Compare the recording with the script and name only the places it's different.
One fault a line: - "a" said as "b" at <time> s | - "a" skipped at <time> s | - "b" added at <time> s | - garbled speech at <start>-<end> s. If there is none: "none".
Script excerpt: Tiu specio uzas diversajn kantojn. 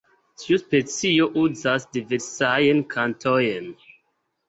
none